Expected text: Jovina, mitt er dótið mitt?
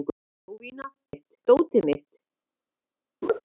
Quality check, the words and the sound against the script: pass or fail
fail